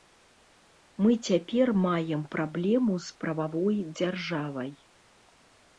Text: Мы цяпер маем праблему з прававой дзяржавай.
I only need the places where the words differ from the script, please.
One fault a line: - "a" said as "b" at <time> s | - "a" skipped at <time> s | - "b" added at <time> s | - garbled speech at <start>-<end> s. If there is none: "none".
none